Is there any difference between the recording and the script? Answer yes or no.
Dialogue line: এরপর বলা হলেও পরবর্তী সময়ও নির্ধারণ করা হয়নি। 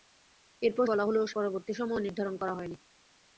no